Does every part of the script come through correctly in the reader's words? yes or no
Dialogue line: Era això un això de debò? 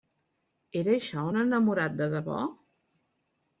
no